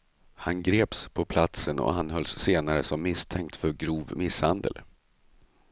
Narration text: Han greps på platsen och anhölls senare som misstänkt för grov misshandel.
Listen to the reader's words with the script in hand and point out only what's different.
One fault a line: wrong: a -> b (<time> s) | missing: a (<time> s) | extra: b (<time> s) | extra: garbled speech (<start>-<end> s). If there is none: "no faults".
no faults